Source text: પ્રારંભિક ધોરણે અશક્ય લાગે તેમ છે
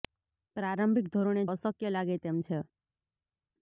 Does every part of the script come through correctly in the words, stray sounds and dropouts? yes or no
yes